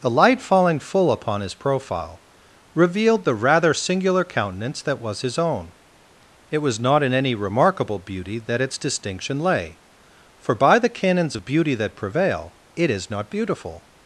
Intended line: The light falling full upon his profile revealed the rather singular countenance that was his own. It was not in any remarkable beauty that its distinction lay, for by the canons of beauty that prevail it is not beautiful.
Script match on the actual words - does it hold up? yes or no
yes